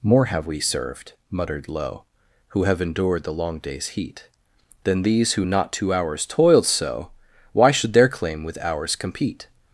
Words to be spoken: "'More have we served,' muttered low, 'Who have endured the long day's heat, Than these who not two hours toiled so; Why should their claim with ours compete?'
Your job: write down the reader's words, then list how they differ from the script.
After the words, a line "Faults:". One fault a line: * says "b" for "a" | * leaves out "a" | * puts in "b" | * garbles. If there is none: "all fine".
"'More have we served,' muttered low, 'Who have endured the long day's heat, Than these who not two hours toiled so; Why should their claim with ours compete?'
Faults:
all fine